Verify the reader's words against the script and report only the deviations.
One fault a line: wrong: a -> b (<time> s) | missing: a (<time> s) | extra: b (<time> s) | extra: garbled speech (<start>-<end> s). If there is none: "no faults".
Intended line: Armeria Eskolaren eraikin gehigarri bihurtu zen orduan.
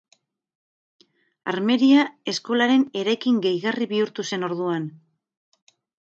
no faults